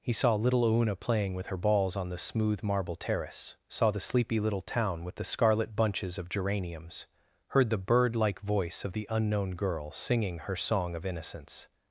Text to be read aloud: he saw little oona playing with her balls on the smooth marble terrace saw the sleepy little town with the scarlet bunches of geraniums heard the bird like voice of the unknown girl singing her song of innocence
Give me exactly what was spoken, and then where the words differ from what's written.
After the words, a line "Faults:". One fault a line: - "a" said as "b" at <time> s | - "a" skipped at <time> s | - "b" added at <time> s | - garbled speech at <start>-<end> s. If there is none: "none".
he saw little oona playing with her balls on the smooth marble terrace saw the sleepy little town with the scarlet bunches of geraniums heard the bird like voice of the unknown girl singing her song of innocence
Faults:
none